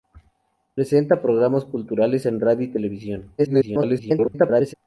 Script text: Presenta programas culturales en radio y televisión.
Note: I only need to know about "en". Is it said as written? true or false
true